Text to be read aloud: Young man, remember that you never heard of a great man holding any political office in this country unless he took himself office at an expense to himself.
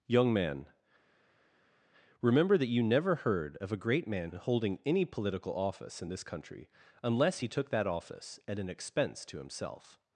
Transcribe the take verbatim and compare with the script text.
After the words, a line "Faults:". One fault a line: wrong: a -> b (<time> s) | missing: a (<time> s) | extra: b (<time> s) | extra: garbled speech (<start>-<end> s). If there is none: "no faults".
Young man, remember that you never heard of a great man holding any political office in this country unless he took that office at an expense to himself.
Faults:
wrong: himself -> that (7.7 s)